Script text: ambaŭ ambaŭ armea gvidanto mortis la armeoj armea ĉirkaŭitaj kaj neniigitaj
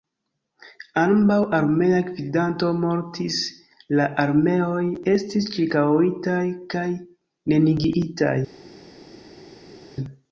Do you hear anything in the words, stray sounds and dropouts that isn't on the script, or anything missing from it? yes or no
yes